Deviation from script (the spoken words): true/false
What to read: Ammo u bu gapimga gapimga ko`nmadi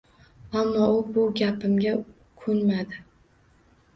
true